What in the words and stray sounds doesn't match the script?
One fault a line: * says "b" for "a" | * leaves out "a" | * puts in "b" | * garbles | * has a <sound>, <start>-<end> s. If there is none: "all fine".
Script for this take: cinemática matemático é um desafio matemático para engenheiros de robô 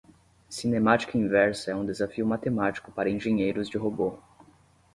* says "inversa" for "matemático"